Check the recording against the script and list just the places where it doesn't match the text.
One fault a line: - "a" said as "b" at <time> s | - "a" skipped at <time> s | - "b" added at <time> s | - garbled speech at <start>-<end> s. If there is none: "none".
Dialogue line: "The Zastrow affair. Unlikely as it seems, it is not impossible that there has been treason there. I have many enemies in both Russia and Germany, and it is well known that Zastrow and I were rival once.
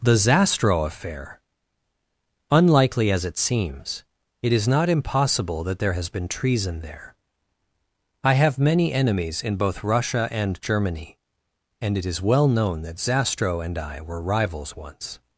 - "rival" said as "rivals" at 14.2 s